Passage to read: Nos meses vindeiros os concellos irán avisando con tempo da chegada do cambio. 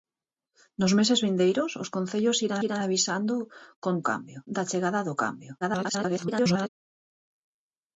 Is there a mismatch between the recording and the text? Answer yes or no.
yes